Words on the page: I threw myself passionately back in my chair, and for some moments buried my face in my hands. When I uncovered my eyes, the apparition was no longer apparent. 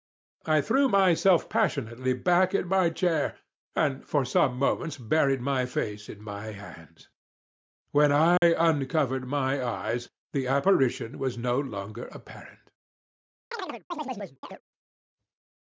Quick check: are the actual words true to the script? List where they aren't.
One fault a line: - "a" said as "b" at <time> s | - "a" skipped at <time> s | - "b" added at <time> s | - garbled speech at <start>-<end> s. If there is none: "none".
none